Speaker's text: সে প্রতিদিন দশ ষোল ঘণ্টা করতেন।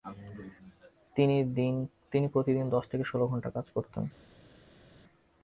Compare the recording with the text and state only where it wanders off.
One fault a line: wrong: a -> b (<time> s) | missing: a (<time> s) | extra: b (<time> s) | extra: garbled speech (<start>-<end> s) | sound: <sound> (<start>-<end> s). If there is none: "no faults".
wrong: সে -> তিনি (2.1 s)
extra: থেকে (2.9 s)
extra: কাজ (3.5 s)